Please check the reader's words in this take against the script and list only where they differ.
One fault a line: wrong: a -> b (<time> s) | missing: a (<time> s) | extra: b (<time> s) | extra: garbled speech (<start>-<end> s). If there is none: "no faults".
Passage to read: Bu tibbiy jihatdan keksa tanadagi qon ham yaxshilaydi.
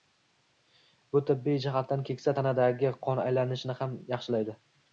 extra: aylanishini (3.3 s)